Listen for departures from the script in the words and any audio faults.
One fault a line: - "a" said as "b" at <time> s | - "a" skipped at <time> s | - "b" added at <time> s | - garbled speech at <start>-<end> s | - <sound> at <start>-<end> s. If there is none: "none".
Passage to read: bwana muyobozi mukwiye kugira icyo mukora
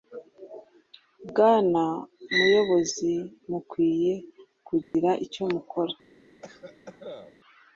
- dropout at 4.8-4.9 s
- cough at 6.4-7.4 s